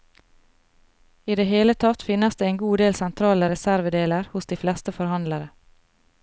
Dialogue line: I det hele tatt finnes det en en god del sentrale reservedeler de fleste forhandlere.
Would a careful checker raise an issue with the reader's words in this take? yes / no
yes